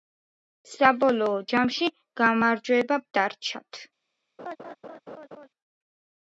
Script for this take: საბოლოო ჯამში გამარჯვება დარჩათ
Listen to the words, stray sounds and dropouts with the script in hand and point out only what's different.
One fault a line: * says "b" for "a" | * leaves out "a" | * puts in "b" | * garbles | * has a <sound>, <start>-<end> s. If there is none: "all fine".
* has a laugh, 4.4-5.5 s